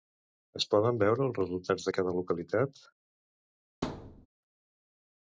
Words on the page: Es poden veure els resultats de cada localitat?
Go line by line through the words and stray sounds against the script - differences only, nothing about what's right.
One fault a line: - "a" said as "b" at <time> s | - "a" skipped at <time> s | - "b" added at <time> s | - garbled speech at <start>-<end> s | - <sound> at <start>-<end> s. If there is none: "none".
- thud at 3.8-4.3 s